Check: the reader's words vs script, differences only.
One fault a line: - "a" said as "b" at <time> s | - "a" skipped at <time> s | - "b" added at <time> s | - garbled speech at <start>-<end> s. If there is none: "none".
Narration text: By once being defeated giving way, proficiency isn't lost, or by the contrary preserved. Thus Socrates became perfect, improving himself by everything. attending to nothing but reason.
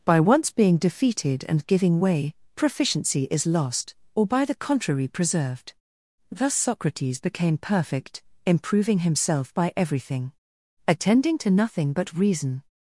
- "and" added at 1.5 s
- "isn't" said as "is" at 3.3 s